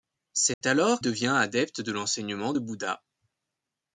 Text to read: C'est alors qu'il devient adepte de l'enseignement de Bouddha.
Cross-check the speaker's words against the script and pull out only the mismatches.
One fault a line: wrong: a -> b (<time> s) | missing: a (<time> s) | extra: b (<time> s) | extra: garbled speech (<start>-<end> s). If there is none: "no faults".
missing: qu'il (1.0 s)